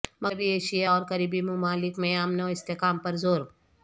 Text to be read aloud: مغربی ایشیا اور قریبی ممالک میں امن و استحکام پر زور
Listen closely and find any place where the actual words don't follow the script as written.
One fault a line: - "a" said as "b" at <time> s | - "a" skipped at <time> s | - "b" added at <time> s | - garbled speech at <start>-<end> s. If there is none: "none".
none